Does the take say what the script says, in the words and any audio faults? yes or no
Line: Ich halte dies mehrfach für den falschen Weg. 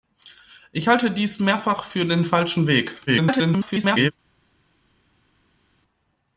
no